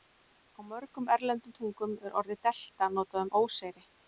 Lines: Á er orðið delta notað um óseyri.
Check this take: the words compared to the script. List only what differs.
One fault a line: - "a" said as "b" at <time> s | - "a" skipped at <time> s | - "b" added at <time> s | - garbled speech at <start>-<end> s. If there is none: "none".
- "mörgum erlendum tungum" added at 0.7 s